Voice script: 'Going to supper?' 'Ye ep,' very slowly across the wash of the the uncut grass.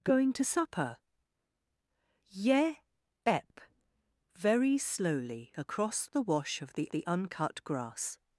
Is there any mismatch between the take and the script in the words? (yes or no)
no